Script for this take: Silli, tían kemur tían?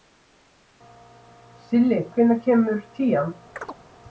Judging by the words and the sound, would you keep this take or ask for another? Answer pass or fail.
fail